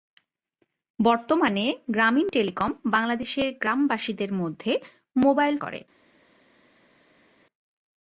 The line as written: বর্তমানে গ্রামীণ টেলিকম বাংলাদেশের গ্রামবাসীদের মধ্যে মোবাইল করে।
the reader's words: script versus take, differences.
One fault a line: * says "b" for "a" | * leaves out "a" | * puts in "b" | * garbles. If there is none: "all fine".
all fine